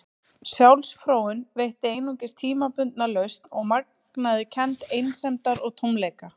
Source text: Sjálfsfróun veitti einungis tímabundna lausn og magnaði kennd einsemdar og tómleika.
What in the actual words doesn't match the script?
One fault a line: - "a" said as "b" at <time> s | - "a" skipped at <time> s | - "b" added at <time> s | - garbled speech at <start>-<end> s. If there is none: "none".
none